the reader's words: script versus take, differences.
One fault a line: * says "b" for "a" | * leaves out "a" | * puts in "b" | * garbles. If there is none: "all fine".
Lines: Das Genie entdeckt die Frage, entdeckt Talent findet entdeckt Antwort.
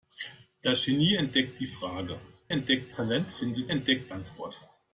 all fine